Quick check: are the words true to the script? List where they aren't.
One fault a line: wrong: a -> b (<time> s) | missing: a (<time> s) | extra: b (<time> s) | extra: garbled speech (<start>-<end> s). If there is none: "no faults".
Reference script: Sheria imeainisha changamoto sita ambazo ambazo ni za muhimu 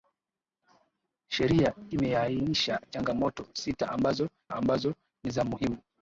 no faults